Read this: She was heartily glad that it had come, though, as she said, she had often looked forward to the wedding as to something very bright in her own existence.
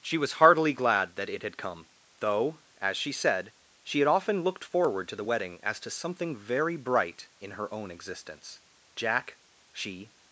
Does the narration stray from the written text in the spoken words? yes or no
yes